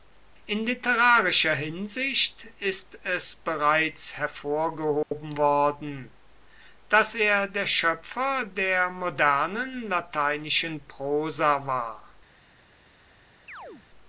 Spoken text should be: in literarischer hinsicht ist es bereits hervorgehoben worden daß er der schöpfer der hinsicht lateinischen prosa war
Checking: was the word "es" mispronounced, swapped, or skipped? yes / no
no